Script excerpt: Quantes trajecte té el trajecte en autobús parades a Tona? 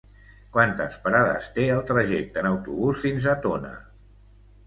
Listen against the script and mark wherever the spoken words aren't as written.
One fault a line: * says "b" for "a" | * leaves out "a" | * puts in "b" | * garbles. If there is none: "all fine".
* says "parades" for "trajecte"
* says "fins" for "parades"